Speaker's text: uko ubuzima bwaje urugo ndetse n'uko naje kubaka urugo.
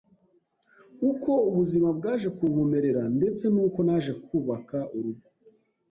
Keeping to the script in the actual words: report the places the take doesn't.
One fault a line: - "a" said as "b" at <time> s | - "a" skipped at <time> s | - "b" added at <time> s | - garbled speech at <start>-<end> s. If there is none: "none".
- "urugo" said as "kunkomerera" at 2.4 s